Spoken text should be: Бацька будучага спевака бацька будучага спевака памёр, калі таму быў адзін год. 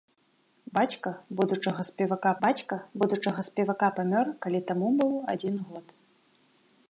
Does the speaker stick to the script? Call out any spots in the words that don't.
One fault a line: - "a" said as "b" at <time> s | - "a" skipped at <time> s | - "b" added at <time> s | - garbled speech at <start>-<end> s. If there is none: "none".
none